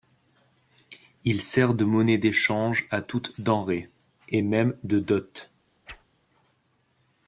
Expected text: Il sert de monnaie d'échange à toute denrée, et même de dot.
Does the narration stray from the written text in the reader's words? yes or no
no